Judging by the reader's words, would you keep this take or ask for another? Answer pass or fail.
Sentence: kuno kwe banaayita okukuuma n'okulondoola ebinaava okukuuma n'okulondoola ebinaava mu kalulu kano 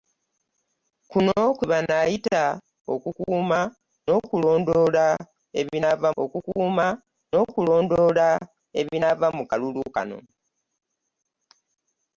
pass